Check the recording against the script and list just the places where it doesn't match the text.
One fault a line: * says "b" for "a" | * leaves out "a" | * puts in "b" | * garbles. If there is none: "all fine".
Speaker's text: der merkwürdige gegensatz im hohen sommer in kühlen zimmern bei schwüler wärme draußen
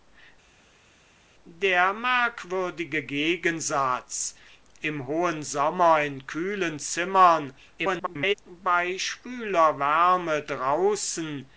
* garbles